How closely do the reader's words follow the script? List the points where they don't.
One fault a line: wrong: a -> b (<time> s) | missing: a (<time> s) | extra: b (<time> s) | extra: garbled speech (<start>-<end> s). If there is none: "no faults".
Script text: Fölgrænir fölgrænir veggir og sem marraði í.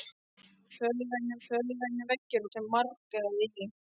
no faults